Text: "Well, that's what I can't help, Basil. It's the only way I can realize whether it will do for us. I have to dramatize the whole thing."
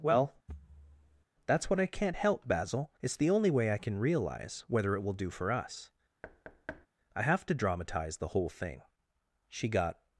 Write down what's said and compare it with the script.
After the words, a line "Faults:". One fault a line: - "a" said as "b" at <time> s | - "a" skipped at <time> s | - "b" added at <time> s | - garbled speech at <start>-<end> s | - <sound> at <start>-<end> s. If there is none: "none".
"Well, that's what I can't help, Basil. It's the only way I can realize whether it will do for us. I have to dramatize the whole thing." She got
Faults:
- thud at 0.5-1.2 s
- thud at 6.2-6.9 s
- "She got" added at 9.5 s